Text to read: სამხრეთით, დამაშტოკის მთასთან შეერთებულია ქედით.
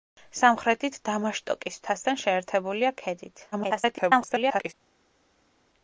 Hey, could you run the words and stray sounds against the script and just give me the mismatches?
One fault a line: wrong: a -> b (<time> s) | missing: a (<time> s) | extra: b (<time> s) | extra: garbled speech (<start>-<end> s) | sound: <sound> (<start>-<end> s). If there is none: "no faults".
extra: garbled speech (3.5-4.7 s)